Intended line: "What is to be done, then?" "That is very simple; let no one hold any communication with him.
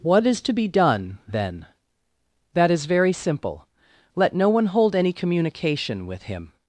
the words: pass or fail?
pass